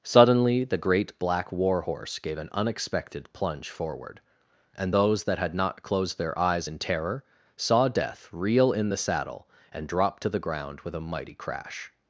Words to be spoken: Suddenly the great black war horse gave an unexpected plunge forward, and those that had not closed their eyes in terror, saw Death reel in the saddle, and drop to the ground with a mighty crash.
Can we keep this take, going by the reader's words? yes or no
yes